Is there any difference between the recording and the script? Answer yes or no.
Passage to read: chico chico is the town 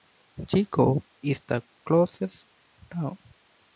yes